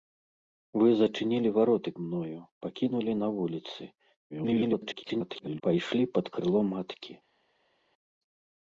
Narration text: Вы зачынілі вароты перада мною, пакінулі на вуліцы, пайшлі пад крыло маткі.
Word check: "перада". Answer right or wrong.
wrong